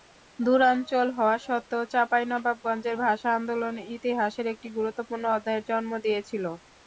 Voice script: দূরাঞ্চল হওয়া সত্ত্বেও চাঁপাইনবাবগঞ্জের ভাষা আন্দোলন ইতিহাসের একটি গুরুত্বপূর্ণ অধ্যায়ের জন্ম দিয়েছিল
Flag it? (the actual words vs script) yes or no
no